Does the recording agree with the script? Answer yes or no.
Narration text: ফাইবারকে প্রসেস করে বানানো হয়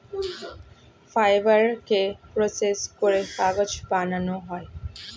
no